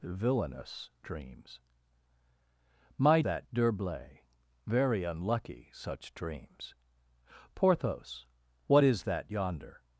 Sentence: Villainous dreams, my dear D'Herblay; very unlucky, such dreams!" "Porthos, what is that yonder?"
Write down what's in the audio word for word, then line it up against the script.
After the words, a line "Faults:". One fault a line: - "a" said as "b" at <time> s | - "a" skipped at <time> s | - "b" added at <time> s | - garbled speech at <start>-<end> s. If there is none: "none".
Villainous dreams, my that D'Herblay; very unlucky, such dreams!" "Porthos, what is that yonder?"
Faults:
- "dear" said as "that" at 3.2 s